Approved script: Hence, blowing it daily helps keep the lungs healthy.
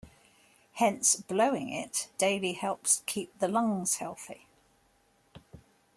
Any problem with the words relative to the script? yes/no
no